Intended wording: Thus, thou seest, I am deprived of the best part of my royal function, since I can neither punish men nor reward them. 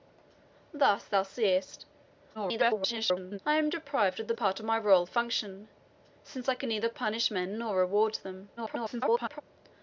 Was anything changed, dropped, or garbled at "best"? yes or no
yes